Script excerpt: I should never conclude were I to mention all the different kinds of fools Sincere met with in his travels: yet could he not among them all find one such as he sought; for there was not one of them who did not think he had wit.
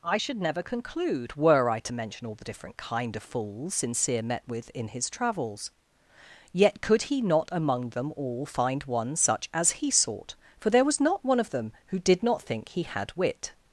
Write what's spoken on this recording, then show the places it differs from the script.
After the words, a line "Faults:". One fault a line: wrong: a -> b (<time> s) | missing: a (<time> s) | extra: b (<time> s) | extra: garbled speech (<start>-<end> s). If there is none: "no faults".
I should never conclude were I to mention all the different kind of fools Sincere met with in his travels: yet could he not among them all find one such as he sought; for there was not one of them who did not think he had wit.
Faults:
wrong: kinds -> kind (2.8 s)